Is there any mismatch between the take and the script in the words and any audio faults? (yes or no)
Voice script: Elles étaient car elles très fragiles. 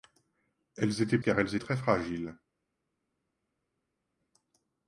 no